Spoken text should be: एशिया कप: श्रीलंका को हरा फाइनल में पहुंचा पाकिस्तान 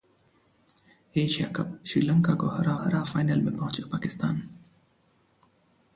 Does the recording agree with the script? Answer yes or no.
no